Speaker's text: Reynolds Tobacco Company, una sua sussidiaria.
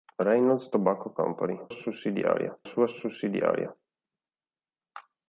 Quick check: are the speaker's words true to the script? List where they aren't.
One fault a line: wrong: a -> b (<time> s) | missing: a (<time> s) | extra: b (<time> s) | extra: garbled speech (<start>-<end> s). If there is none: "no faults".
wrong: una -> sussidiaria (1.7 s)